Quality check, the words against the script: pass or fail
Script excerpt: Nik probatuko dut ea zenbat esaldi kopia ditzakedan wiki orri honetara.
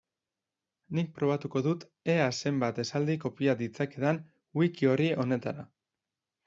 pass